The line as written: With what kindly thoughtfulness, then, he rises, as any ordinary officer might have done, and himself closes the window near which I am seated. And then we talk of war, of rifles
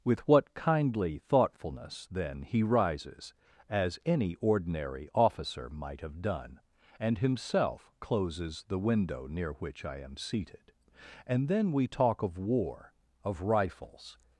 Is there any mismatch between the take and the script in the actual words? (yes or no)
no